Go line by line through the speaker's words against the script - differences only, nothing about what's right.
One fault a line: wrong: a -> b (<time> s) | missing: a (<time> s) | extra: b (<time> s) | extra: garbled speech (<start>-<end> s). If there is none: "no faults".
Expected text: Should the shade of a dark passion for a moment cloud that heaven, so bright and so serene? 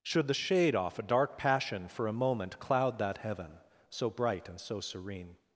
wrong: of -> off (0.8 s)